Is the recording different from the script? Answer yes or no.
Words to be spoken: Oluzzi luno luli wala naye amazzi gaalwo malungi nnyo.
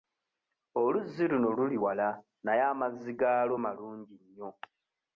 no